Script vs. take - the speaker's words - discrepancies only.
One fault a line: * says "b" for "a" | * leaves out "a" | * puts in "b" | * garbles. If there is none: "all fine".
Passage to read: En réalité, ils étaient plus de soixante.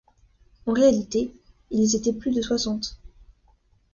all fine